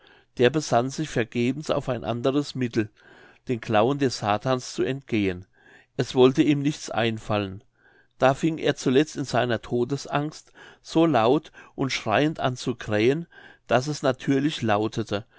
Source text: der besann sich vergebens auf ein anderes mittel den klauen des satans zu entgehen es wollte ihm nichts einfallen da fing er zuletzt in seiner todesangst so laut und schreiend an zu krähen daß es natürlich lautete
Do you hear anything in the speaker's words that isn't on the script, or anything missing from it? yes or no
no